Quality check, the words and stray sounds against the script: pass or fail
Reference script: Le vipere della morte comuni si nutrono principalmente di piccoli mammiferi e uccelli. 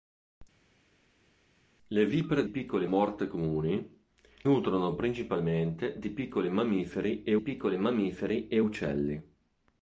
fail